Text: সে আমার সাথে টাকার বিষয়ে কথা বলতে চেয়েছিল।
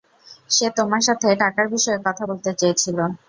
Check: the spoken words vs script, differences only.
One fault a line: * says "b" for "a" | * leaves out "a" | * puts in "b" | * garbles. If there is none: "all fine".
* says "তোমার" for "আমার"